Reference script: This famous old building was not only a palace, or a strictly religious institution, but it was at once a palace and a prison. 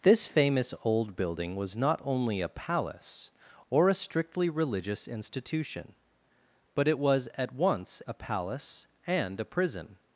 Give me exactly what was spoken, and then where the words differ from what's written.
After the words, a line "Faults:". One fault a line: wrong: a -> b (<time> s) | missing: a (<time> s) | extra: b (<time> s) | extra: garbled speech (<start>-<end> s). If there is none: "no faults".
This famous old building was not only a palace, or a strictly religious institution, but it was at once a palace and a prison.
Faults:
no faults